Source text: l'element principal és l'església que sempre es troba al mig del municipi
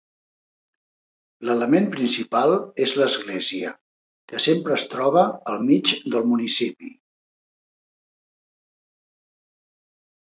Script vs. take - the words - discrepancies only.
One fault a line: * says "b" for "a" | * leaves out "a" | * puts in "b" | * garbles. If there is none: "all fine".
all fine